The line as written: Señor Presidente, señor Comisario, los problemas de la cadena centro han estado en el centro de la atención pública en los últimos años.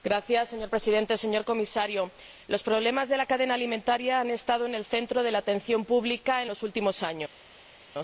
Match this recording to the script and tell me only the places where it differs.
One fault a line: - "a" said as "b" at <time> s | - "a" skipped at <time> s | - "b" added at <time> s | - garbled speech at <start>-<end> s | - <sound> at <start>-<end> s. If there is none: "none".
- "centro" said as "alimentaria" at 3.5 s